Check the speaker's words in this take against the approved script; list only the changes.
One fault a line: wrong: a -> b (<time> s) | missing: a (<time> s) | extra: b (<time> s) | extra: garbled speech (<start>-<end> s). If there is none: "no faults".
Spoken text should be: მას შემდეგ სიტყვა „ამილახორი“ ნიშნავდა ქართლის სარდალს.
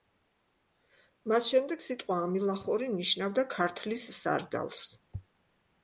no faults